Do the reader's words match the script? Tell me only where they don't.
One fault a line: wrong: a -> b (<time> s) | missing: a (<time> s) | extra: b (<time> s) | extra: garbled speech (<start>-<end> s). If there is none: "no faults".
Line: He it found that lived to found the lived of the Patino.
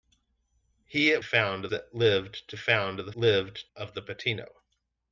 no faults